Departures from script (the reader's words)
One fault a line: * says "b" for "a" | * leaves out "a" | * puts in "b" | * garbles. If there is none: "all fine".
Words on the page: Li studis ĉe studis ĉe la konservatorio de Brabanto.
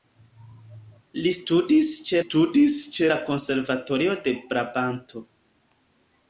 all fine